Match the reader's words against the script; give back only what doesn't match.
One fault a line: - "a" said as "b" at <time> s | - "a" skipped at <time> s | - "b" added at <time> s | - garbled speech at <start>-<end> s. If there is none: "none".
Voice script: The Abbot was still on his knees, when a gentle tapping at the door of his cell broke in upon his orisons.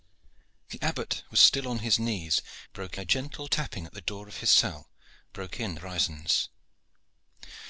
- "when" said as "broke" at 2.7 s
- "upon his" skipped at 5.8 s